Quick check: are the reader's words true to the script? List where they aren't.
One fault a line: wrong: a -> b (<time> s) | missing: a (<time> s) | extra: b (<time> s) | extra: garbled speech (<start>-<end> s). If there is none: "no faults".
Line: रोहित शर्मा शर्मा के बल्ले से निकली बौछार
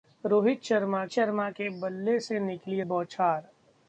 no faults